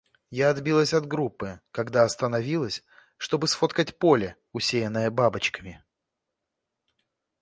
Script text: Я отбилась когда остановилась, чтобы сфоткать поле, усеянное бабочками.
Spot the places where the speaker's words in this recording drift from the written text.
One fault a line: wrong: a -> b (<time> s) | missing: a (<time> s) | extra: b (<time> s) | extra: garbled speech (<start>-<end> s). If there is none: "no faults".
extra: от группы (0.9 s)